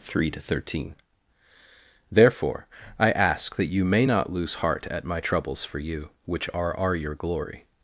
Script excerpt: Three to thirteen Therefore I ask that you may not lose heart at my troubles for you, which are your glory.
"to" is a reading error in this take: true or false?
false